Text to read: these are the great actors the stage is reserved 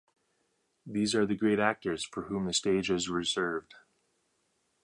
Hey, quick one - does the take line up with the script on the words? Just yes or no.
no